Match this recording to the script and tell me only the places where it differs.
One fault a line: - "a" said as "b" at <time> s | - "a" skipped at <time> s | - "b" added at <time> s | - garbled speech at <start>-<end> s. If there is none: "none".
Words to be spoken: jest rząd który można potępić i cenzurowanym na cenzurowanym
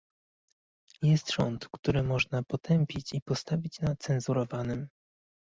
- "cenzurowanym" said as "postawić" at 3.2 s